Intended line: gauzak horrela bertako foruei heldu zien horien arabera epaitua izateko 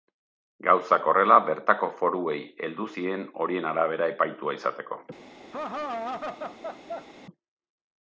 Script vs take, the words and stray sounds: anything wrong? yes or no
yes